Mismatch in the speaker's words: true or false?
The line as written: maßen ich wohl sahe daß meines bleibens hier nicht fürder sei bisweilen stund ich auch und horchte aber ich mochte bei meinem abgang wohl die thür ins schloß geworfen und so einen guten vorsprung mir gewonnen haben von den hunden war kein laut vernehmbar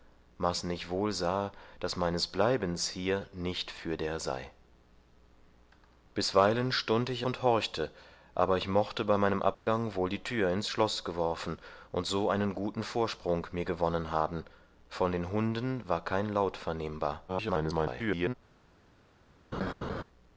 true